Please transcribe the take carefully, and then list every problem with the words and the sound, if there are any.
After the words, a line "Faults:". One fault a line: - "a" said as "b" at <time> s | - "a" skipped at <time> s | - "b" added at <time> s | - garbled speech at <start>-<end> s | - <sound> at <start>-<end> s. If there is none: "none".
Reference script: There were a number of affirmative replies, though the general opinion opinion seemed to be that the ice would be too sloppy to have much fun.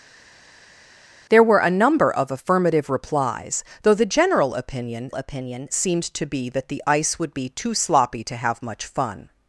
There were a number of affirmative replies, though the general opinion opinion seemed to be that the ice would be too sloppy to have much fun.
Faults:
none